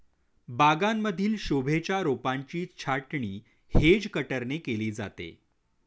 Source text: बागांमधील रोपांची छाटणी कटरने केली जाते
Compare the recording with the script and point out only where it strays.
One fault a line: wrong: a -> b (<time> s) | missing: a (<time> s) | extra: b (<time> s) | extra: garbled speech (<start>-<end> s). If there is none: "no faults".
extra: शोभेच्या (1.4 s)
extra: हेज (3.7 s)